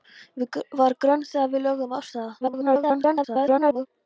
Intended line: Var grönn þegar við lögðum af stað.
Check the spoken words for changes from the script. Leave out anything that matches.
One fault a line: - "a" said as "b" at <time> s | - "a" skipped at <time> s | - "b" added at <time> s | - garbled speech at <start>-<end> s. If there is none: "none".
- garbled speech at 2.4-3.9 s